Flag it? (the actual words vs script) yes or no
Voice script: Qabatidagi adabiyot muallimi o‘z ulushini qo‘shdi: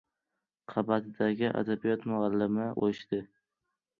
yes